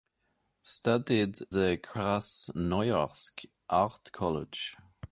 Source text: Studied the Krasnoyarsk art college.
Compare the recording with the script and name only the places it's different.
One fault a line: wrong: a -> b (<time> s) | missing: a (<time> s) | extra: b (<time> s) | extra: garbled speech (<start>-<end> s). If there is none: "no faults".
no faults